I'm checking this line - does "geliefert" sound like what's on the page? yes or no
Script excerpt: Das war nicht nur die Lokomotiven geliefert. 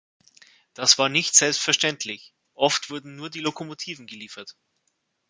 yes